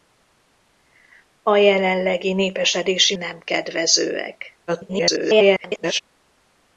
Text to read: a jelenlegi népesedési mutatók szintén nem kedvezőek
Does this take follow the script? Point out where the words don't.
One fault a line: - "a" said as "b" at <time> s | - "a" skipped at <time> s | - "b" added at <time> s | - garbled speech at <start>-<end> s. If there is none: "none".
- "mutatók szintén" skipped at 3.1 s
- garbled speech at 4.7-6.0 s